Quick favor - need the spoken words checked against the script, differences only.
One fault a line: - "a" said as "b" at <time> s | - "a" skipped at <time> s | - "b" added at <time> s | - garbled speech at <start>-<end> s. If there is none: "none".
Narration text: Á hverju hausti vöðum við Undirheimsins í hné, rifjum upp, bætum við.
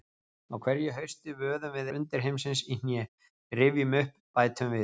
none